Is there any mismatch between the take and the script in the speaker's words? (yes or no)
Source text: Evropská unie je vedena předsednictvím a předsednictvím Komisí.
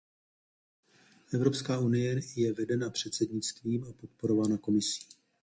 yes